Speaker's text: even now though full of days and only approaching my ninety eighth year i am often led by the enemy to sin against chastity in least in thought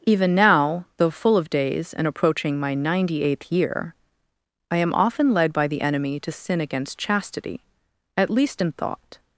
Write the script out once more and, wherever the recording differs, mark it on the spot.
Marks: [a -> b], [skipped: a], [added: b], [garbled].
even now though full of days and [skipped: only] approaching my ninety eighth year i am often led by the enemy to sin against chastity [in -> at] least in thought